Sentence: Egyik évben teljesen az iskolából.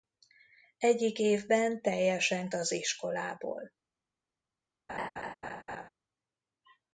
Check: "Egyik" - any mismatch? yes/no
no